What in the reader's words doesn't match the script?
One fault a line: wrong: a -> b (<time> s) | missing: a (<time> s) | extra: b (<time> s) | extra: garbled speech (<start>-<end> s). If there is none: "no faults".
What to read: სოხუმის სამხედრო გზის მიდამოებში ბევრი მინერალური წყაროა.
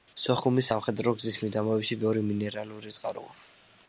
no faults